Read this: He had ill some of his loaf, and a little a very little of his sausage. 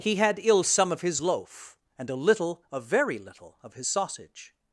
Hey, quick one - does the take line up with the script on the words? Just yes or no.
yes